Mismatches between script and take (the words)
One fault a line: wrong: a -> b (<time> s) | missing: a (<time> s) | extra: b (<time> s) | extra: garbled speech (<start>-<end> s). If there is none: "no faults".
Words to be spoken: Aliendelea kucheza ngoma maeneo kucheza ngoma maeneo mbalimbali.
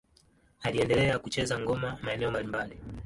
missing: kucheza ngoma maeneo (2.3 s)